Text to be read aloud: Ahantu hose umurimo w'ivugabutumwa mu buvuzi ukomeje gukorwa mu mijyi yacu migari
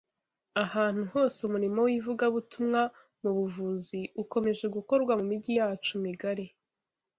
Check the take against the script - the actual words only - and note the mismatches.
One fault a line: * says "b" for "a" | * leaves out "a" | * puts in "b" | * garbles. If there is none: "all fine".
all fine